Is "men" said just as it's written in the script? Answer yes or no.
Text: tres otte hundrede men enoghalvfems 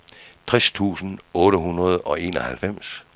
no